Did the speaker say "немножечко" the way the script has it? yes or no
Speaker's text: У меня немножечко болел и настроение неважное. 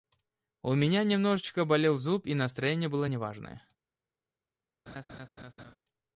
yes